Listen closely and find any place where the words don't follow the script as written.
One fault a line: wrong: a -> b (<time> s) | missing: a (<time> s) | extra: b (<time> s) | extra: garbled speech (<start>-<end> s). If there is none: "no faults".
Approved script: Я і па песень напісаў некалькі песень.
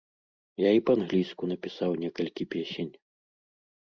wrong: песень -> англійску (1.0 s)